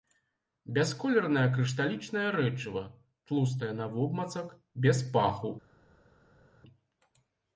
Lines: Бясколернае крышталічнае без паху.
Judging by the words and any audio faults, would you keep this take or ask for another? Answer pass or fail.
fail